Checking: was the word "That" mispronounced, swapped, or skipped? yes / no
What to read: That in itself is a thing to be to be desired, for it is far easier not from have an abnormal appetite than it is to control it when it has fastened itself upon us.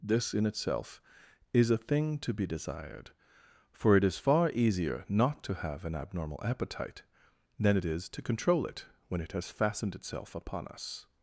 yes